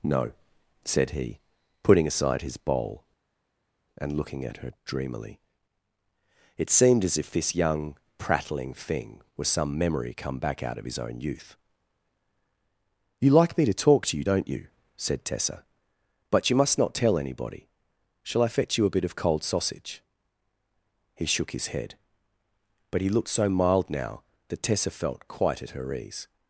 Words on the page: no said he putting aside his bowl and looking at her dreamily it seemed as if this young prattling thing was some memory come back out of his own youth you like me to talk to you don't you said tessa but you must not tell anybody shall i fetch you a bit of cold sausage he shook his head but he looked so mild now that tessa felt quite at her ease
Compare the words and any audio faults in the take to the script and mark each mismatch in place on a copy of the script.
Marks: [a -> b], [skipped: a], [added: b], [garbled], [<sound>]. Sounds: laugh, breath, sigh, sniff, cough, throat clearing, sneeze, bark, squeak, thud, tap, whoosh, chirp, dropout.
no said he putting aside his bowl and looking at her dreamily it seemed as if this young prattling thing was some memory come back out of his own youth you like me to talk to you don't you said tessa but you must not tell anybody shall i fetch you a bit of cold sausage he shook his head but he looked so mild now that tessa felt quite at her ease